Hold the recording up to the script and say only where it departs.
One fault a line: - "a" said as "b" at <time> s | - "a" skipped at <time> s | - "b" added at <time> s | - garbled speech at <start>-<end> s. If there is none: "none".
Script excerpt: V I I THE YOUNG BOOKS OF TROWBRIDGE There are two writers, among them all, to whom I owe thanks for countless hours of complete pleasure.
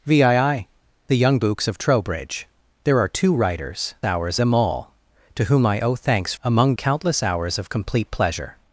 - "among" said as "hours" at 4.0 s
- "for" said as "among" at 6.4 s